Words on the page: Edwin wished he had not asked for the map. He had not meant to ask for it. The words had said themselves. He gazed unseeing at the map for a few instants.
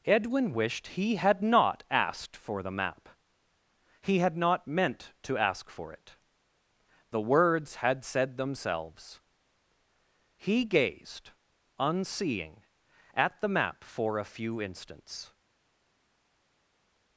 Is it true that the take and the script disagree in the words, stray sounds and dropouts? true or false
false